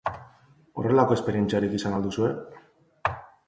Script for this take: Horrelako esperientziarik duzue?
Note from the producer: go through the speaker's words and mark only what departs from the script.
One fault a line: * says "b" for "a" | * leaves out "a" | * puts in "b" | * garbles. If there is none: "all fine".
* puts in "izan al"